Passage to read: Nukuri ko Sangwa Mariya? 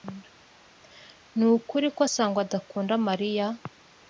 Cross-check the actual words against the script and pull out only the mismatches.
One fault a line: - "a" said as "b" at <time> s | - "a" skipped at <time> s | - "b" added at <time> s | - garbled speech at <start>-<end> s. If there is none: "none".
- "adakunda" added at 2.5 s